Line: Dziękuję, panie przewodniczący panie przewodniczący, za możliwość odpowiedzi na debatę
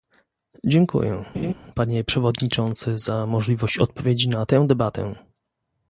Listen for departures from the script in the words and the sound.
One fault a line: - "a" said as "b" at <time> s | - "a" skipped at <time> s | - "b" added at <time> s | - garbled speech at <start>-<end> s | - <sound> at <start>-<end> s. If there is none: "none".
- laugh at 1.3-1.5 s
- "panie przewodniczący" skipped at 3.0 s
- "tę" added at 4.4 s